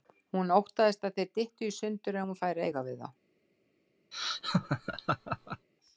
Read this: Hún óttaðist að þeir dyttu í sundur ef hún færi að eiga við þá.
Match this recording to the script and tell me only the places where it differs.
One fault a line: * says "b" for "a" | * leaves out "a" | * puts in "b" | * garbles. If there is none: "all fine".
all fine